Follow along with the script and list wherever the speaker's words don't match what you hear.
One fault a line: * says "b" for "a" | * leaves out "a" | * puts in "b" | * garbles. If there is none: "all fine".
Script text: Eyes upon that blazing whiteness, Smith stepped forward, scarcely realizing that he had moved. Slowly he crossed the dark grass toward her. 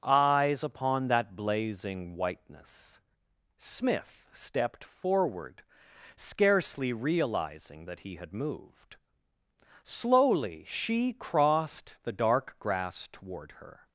* says "she" for "he"